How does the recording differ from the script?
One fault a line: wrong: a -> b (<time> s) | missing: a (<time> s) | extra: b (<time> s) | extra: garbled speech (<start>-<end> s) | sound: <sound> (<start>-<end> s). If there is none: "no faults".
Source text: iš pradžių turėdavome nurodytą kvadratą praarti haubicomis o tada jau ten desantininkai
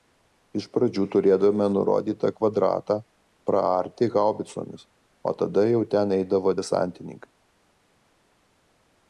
extra: eidavo (6.2 s)